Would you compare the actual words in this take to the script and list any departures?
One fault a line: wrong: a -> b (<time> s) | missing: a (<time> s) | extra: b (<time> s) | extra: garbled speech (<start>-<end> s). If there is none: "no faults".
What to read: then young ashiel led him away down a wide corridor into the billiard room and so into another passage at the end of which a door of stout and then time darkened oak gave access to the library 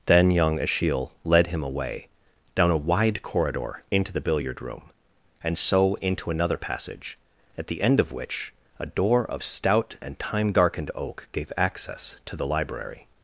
missing: then (10.2 s)